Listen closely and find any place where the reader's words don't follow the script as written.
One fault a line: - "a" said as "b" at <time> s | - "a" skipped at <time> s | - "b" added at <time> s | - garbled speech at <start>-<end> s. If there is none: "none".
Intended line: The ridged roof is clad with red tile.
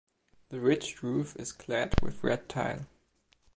none